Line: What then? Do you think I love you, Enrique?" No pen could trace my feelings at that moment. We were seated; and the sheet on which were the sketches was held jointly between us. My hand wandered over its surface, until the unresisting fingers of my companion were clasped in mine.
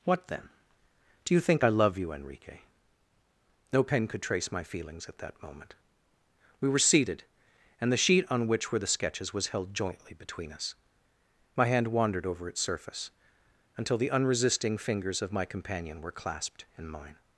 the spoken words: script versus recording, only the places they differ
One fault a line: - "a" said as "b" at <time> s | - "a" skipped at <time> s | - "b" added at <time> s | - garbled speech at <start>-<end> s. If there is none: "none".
none